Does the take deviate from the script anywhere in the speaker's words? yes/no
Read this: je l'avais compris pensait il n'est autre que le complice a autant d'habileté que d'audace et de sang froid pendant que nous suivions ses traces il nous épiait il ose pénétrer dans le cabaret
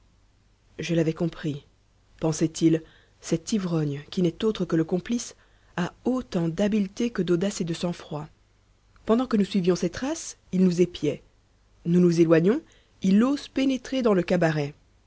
yes